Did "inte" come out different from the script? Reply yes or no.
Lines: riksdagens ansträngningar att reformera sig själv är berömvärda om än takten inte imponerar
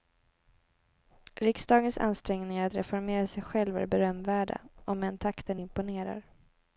yes